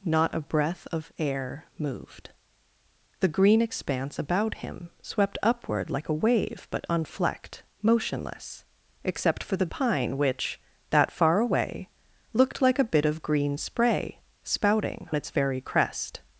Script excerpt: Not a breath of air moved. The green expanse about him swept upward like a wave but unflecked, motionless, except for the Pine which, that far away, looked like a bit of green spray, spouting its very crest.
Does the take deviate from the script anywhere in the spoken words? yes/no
no